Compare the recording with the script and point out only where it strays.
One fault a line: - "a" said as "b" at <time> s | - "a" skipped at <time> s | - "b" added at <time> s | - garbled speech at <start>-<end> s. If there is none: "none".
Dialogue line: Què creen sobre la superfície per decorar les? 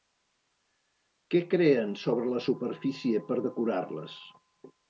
none